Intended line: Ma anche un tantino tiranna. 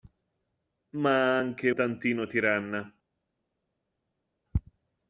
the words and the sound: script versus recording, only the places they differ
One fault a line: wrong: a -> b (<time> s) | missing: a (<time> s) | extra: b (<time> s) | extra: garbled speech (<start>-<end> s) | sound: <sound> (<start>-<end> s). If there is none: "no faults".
missing: un (1.7 s)